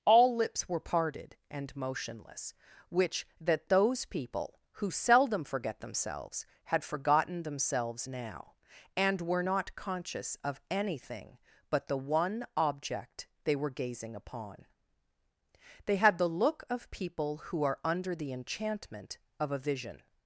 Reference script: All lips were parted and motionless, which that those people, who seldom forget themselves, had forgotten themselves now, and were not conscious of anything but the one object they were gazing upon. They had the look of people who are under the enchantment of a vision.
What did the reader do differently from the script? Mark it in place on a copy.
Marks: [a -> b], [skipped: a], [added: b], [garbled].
All lips were parted and motionless, which that those people, who seldom forget themselves, had forgotten themselves now, and were not conscious of anything but the one object they were gazing upon. They had the look of people who are under the enchantment of a vision.